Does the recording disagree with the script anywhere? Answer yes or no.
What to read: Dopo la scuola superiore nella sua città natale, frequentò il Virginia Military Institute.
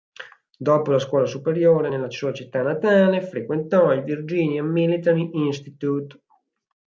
no